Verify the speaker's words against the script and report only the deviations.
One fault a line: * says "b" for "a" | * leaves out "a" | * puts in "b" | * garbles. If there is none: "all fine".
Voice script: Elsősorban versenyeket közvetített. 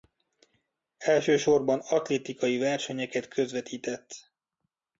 * puts in "atlétikai"